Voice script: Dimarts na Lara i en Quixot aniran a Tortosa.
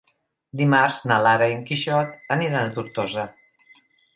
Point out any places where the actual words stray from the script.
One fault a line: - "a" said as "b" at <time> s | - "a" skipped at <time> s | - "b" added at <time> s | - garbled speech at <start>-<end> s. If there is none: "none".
none